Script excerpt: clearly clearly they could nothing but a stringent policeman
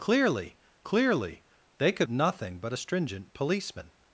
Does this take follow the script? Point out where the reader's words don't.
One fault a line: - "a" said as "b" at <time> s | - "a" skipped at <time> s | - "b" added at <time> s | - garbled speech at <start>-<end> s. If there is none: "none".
none